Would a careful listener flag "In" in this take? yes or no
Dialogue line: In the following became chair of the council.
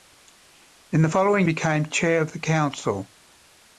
no